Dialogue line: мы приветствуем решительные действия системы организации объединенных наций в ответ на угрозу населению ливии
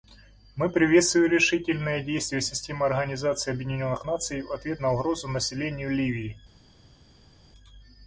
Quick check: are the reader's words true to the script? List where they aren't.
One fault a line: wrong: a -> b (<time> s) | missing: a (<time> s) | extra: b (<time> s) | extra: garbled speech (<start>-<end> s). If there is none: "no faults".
no faults